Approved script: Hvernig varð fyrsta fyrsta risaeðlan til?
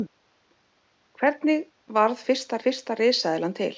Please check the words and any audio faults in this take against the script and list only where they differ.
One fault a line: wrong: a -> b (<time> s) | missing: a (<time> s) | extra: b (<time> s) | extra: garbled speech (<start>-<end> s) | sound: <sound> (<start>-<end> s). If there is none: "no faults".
no faults